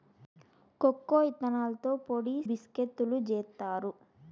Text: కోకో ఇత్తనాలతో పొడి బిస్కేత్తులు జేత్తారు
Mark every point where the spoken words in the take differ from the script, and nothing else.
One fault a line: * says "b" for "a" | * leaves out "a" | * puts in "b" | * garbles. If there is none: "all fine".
all fine